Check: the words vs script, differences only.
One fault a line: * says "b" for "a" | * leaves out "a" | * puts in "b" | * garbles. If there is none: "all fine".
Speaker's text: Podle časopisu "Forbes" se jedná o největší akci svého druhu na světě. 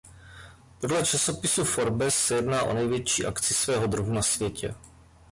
all fine